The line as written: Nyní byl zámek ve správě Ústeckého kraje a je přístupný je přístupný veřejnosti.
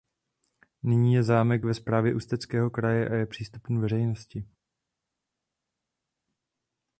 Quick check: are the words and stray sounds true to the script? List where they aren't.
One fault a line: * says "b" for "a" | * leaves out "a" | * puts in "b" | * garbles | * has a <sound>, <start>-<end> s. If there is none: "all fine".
* says "je" for "byl"
* leaves out "je přístupný"